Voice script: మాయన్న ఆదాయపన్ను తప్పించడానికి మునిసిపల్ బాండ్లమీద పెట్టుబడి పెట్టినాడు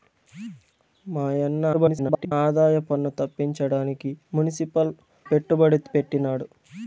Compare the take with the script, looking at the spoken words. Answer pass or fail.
fail